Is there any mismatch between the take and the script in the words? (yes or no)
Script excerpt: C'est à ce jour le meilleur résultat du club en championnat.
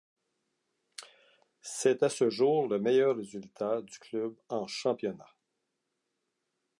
no